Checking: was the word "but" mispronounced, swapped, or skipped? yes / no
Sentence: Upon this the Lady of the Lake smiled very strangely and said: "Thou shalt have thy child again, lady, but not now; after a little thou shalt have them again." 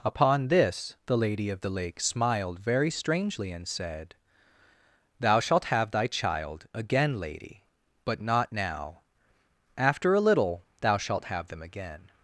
no